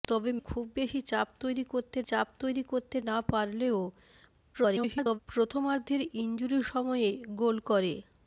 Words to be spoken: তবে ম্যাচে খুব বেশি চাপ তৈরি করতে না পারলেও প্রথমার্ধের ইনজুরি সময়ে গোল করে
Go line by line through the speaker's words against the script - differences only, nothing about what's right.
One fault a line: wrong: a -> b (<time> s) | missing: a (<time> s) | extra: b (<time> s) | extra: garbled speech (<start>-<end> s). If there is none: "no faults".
missing: ম্যাচে (0.3 s)
extra: চাপ তৈরি করতে (2.1 s)
extra: garbled speech (4.5-5.2 s)